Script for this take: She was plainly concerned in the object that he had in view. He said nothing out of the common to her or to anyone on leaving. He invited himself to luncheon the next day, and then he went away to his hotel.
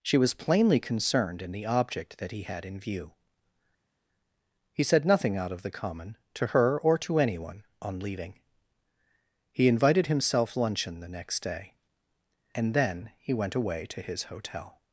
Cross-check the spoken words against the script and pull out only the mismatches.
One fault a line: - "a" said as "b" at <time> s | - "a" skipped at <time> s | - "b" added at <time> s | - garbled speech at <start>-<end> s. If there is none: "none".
- "to" skipped at 10.6 s